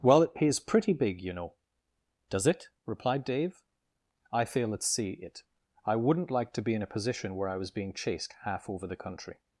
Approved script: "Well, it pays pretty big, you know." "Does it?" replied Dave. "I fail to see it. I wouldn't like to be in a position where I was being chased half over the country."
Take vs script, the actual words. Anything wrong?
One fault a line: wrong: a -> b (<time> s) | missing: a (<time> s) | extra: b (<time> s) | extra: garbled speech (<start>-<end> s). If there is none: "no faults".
wrong: to -> at (4.7 s)